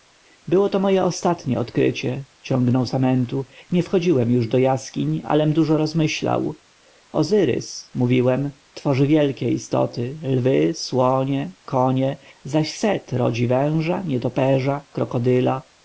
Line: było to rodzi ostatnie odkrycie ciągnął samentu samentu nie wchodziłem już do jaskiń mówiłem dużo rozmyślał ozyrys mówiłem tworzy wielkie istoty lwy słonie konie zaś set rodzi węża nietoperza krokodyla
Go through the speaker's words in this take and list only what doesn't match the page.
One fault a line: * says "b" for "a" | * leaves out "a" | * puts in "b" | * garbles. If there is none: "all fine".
* says "moje" for "rodzi"
* leaves out "samentu"
* says "alem" for "mówiłem"